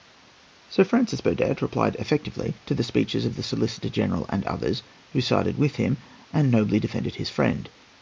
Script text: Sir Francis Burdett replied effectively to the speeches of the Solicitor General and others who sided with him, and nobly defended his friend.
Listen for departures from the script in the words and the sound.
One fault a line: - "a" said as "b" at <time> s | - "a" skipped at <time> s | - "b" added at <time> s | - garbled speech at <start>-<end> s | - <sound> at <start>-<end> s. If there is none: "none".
none